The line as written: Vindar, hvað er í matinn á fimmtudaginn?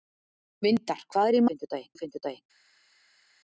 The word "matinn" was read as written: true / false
false